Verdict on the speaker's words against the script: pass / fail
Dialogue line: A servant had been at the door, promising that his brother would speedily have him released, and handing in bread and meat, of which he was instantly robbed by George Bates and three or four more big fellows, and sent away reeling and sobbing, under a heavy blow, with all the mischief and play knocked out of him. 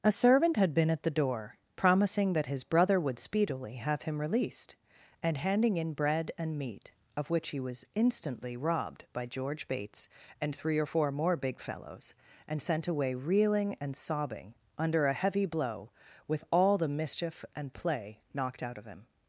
pass